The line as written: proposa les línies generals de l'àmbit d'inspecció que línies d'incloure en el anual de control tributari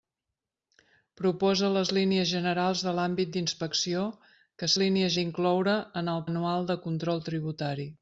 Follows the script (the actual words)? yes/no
yes